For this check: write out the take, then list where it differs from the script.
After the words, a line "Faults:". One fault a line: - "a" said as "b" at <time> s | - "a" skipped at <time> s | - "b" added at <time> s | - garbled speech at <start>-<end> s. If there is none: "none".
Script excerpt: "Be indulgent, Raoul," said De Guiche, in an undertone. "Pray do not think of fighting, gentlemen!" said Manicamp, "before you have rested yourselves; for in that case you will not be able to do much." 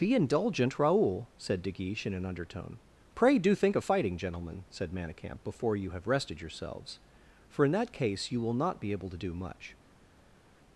"Be indulgent, Raoul," said De Guiche, in an undertone. "Pray do think of fighting, gentlemen!" said Manicamp, "before you have rested yourselves; for in that case you will not be able to do much."
Faults:
- "not" skipped at 3.5 s